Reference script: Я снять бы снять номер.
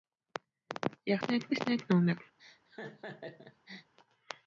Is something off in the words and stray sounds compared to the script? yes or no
yes